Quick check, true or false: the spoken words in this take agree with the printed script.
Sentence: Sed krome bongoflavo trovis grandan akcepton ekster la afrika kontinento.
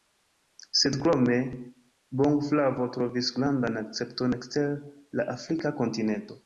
true